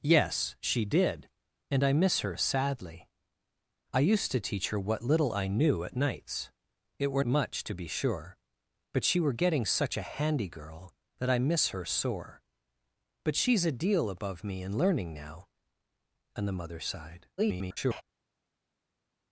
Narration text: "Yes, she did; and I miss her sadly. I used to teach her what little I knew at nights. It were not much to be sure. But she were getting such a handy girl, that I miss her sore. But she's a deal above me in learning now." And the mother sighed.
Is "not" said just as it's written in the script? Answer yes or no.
no